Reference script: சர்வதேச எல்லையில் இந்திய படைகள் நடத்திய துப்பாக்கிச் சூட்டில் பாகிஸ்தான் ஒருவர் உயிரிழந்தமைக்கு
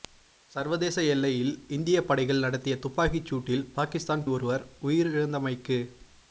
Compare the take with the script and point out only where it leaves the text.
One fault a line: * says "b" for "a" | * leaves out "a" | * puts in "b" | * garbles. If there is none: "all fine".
all fine